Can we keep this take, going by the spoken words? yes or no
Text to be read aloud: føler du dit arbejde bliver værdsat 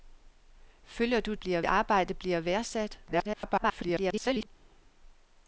no